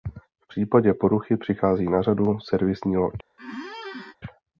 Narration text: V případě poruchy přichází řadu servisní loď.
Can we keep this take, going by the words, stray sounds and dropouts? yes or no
no